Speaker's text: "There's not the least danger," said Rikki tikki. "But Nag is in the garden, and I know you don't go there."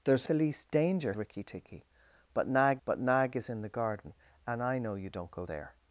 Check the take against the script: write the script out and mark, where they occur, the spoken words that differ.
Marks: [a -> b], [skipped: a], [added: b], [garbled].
"There's [skipped: not] the least danger," [skipped: said] Rikki tikki. "But Nag [added: but Nag] is in the garden, and I know you don't go there."